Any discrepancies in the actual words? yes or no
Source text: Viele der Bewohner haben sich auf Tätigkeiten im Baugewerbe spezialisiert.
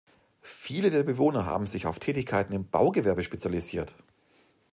no